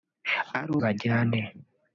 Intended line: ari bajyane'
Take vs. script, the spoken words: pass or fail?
pass